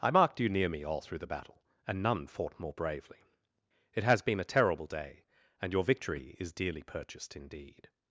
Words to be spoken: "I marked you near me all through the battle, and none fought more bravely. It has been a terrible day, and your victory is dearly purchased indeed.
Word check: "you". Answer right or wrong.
right